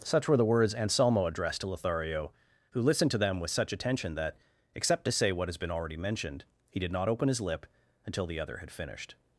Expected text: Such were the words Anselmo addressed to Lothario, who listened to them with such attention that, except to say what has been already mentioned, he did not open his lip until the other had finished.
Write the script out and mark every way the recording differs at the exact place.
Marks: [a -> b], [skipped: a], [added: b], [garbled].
Such were the words Anselmo addressed to Lothario, who listened to them with such attention that, except to say what has been already mentioned, he did not open his lip until the other had finished.